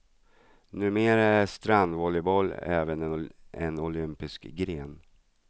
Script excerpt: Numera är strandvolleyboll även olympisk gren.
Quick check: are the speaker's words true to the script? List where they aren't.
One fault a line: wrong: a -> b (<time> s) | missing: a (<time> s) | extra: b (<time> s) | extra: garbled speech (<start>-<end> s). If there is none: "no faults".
extra: en (3.5 s)